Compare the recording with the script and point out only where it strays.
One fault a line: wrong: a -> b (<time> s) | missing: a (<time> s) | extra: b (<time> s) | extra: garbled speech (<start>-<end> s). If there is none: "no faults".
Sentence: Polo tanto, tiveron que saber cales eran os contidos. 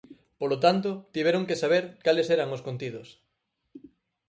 no faults